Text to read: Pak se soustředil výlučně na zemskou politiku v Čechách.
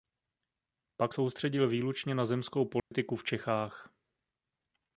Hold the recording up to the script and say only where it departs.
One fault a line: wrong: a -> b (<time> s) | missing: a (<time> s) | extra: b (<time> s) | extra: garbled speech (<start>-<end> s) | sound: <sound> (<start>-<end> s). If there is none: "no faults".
missing: se (1.1 s)
sound: dropout (2.8-2.9 s)